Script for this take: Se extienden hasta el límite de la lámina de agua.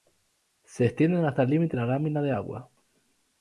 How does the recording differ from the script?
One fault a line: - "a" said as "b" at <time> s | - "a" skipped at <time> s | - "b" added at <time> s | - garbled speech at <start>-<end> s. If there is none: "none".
- "de" skipped at 1.8 s